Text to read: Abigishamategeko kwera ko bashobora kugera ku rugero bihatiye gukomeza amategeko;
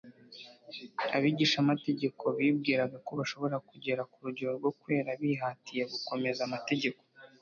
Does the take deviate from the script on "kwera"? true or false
true